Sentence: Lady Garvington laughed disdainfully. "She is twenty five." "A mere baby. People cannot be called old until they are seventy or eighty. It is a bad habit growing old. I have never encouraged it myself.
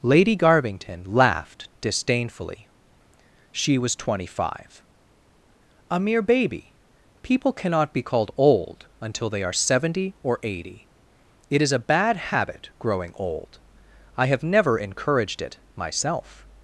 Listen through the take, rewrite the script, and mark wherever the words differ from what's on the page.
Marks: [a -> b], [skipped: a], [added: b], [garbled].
Lady Garvington laughed disdainfully. "She [is -> was] twenty five." "A mere baby. People cannot be called old until they are seventy or eighty. It is a bad habit growing old. I have never encouraged it myself.